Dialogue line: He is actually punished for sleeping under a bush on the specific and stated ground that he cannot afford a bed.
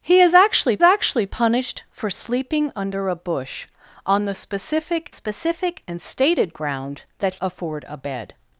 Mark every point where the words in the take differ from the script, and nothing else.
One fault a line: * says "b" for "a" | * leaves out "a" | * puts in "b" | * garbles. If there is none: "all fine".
* puts in "actually"
* puts in "specific"
* leaves out "he cannot"